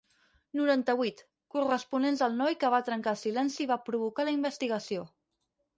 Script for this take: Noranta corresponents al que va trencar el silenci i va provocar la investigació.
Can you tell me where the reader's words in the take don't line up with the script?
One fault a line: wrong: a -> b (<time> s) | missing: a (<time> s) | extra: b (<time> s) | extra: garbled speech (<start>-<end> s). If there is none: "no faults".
extra: vuit (1.0 s)
extra: noi (2.4 s)